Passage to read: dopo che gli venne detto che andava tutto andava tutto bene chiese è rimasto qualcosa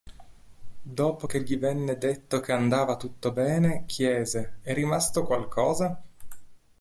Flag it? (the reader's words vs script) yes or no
yes